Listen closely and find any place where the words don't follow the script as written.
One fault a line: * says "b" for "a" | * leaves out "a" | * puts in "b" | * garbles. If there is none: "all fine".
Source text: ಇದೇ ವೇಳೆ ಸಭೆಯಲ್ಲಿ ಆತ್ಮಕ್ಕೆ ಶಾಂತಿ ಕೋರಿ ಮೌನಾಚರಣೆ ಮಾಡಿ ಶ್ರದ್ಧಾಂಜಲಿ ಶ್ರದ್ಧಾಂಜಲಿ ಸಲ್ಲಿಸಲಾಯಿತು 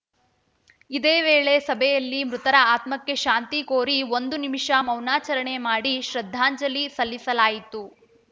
* puts in "ಮೃತರ"
* puts in "ಒಂದು ನಿಮಿಷ"
* leaves out "ಶ್ರದ್ಧಾಂಜಲಿ"